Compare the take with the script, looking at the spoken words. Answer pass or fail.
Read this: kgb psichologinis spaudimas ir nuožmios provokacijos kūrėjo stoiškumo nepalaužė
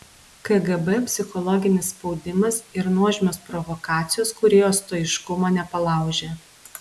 pass